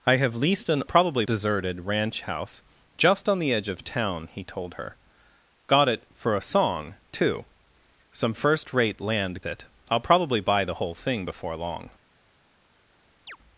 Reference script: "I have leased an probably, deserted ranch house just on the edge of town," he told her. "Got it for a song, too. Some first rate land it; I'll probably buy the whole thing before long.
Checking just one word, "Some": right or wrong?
right